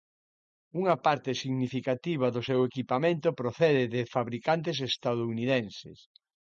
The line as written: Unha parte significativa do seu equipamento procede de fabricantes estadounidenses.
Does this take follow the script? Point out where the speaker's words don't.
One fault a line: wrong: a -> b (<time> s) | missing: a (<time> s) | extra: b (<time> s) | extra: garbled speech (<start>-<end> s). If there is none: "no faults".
no faults